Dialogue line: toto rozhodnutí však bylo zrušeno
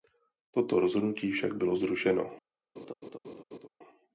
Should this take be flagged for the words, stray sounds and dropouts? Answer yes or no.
yes